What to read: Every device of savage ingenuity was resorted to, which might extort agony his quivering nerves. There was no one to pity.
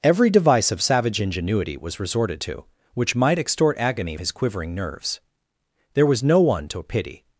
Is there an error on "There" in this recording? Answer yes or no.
no